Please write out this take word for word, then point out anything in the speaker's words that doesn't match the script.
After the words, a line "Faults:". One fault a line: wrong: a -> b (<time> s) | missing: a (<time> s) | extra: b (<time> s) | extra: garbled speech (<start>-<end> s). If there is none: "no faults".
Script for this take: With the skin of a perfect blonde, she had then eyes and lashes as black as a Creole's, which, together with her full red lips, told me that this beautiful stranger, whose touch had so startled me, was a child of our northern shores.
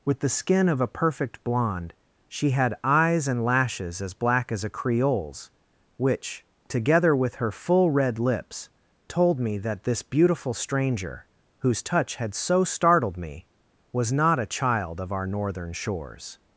With the skin of a perfect blonde, she had eyes and lashes as black as a Creole's, which, together with her full red lips, told me that this beautiful stranger, whose touch had so startled me, was not a child of our northern shores.
Faults:
missing: then (2.7 s)
extra: not (14.1 s)